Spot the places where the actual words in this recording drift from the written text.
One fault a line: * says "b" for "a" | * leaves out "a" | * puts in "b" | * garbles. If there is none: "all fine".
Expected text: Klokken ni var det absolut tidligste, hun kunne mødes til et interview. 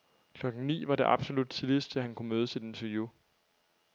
* says "han" for "hun"